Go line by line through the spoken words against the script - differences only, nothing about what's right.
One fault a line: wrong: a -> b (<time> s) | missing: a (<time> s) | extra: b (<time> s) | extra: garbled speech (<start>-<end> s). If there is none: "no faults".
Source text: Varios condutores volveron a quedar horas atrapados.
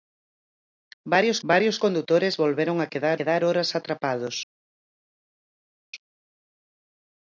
extra: varios (1.5 s)
extra: quedar (3.1 s)